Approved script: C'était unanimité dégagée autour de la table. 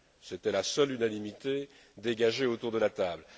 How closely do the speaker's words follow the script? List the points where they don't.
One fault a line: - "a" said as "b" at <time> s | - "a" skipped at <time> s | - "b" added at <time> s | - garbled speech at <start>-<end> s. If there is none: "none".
- "la seule" added at 0.5 s